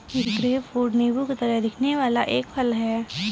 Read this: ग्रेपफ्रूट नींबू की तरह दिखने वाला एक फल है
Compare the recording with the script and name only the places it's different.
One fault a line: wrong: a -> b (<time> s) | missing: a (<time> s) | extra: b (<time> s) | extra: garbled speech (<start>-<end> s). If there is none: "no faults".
no faults